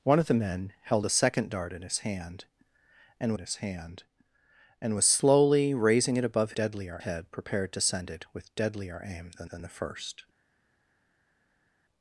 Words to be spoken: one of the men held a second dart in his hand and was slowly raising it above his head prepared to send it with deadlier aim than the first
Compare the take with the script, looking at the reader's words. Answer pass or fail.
fail